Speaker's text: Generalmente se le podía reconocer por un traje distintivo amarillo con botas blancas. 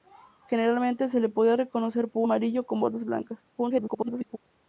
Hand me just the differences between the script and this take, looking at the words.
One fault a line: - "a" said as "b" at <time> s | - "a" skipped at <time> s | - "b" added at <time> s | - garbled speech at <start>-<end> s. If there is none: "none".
- "un traje distintivo" skipped at 2.2 s
- garbled speech at 3.6-4.4 s